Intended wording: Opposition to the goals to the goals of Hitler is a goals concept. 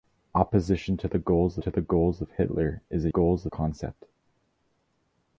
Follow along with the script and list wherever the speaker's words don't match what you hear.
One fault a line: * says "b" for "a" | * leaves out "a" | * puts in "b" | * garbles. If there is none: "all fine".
all fine